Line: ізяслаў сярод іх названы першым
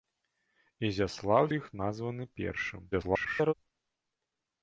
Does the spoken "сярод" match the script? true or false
false